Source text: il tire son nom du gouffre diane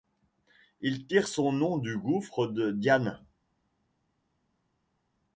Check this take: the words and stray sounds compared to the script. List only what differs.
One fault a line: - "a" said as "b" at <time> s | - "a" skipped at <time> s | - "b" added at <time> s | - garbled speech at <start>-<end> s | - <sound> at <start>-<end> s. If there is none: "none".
- "de" added at 2.5 s